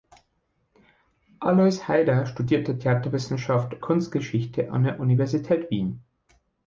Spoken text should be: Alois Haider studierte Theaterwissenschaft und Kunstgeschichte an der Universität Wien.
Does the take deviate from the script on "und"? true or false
true